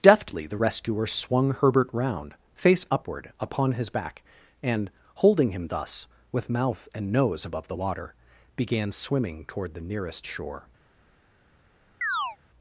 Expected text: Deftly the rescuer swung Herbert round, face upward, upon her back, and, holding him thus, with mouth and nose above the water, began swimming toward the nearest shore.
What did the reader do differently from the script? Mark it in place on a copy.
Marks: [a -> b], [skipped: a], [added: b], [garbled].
Deftly the rescuer swung Herbert round, face upward, upon [her -> his] back, and, holding him thus, with mouth and nose above the water, began swimming toward the nearest shore.